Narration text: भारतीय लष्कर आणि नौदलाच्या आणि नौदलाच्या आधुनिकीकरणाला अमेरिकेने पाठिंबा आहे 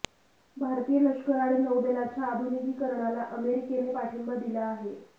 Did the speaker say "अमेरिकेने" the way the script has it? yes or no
yes